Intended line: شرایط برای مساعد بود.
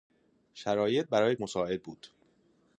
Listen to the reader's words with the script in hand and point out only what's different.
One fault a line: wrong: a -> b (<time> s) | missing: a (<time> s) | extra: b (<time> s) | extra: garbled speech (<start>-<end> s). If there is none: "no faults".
no faults